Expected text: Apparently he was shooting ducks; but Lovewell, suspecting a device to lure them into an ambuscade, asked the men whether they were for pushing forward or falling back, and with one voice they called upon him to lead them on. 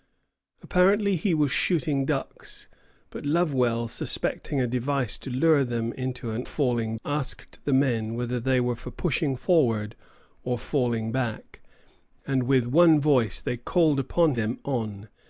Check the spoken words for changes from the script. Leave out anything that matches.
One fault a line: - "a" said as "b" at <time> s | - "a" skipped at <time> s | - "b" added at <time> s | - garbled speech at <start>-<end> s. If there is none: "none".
- "ambuscade" said as "falling" at 6.4 s
- "him to lead" skipped at 14.4 s